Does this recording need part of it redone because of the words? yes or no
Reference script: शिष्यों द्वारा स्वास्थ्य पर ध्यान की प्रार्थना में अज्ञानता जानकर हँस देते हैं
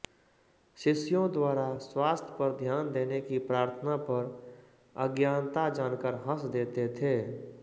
yes